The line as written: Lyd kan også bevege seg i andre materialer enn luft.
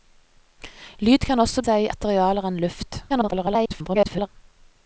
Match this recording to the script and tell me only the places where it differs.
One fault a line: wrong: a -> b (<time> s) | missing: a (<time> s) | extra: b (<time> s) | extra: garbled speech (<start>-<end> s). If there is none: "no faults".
missing: bevege (1.6 s)
missing: andre (1.9 s)
extra: garbled speech (3.1-4.3 s)